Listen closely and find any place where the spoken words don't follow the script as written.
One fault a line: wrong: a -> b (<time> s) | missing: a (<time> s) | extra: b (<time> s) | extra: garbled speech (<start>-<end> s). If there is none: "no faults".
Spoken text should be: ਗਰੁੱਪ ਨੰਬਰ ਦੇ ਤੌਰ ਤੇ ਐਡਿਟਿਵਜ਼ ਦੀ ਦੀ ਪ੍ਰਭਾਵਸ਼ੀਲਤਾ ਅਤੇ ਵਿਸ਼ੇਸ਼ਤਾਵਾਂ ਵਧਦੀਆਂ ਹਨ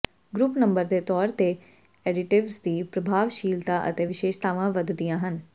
missing: ਦੀ (2.8 s)